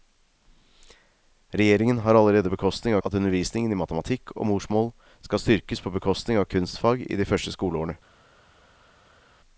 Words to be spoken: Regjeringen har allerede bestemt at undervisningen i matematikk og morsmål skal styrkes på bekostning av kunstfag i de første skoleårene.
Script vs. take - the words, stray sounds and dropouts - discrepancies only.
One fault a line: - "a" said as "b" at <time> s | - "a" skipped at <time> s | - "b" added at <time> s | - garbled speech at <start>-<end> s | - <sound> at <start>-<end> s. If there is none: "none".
- "bestemt" said as "bekostning" at 2.5 s